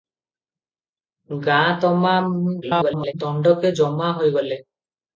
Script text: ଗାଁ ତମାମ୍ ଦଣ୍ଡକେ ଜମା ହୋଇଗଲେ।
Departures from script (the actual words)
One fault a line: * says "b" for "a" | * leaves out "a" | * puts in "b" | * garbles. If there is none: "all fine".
* garbles